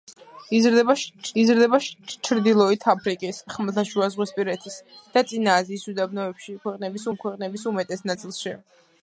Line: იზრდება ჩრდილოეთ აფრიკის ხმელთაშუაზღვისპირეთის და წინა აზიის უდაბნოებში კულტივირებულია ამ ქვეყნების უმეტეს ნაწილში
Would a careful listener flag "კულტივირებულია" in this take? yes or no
yes